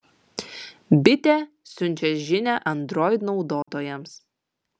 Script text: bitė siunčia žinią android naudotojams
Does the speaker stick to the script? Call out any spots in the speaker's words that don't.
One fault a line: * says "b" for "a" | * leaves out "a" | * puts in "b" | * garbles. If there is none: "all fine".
all fine